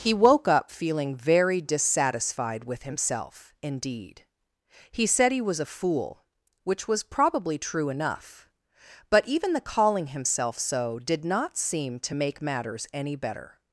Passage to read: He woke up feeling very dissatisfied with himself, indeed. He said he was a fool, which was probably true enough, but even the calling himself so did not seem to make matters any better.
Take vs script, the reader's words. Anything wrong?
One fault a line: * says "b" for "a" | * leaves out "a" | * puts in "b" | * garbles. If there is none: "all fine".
all fine